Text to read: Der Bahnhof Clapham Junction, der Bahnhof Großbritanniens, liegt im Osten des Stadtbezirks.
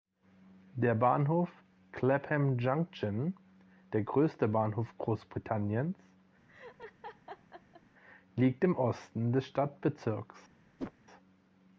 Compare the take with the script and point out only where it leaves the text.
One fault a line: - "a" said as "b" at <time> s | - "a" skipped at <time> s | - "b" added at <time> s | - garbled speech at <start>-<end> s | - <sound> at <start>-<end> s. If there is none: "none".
- "größte" added at 4.0 s
- laugh at 6.5-7.8 s
- whoosh at 10.8-10.9 s